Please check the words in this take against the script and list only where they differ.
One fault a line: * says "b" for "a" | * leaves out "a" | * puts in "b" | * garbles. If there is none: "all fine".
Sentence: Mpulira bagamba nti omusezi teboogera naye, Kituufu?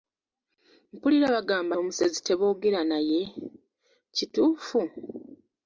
* leaves out "nti"